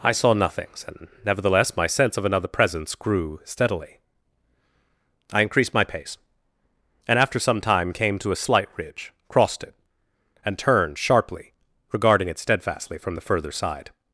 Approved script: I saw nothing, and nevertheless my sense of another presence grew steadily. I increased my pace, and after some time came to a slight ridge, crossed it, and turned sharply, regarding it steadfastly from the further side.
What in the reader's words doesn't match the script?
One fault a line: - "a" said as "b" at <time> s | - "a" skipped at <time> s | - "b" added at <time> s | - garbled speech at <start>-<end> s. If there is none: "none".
- "nothing" said as "nothings" at 0.3 s